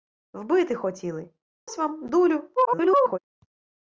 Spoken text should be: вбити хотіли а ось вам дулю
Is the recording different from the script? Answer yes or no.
yes